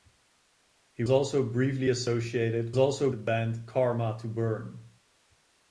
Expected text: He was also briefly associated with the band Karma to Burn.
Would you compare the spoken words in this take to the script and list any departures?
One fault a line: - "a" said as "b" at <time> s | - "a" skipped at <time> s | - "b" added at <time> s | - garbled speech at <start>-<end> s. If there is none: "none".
- "was" skipped at 1.0 s
- "with" said as "also" at 2.8 s